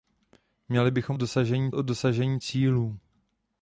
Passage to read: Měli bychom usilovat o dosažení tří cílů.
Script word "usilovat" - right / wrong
wrong